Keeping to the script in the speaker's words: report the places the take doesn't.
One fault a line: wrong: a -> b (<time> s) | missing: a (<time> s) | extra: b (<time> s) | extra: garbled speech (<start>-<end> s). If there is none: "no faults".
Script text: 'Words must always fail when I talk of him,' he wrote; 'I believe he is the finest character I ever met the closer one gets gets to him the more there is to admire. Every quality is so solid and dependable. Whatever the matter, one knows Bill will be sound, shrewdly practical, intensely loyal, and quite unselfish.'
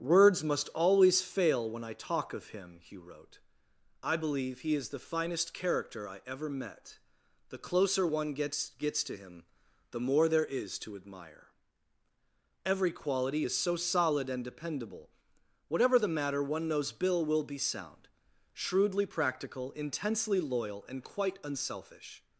no faults